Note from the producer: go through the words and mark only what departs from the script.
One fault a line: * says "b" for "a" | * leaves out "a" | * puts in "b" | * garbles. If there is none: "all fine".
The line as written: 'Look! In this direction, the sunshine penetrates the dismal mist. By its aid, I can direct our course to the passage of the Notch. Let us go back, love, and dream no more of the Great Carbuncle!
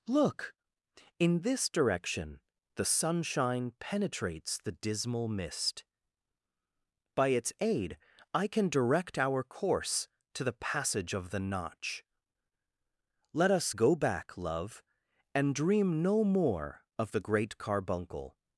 all fine